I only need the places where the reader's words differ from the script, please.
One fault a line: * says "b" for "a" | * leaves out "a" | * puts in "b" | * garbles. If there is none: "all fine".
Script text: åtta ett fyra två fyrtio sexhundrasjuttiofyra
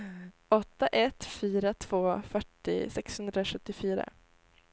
all fine